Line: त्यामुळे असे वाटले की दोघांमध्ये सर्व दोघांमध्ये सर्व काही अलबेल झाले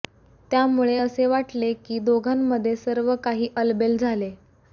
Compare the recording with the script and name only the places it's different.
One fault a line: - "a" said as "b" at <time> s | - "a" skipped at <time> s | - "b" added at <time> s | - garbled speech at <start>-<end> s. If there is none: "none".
- "दोघांमध्ये सर्व" skipped at 3.1 s